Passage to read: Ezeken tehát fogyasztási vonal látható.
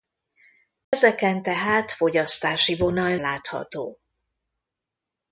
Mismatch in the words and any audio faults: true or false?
true